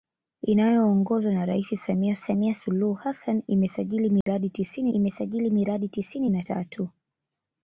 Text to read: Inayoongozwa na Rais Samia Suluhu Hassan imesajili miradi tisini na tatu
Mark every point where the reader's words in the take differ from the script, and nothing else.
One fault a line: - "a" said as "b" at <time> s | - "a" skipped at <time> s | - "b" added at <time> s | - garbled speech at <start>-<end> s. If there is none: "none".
- "Samia" added at 2.3 s
- "imesajili miradi tisini" added at 4.9 s